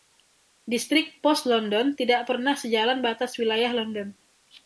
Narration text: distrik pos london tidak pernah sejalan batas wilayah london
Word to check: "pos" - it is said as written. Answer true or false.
true